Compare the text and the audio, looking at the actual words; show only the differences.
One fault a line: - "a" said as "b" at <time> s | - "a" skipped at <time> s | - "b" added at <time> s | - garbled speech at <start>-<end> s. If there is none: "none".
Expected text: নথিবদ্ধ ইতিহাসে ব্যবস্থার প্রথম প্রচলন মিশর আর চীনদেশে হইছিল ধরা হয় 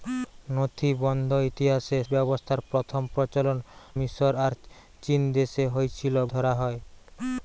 none